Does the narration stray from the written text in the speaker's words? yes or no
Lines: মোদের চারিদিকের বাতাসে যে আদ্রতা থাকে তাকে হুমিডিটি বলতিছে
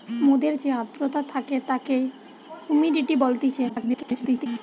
yes